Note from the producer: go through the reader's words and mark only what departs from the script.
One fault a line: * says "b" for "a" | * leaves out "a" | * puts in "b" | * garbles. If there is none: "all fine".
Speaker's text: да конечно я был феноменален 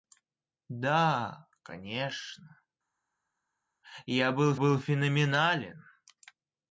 * puts in "был"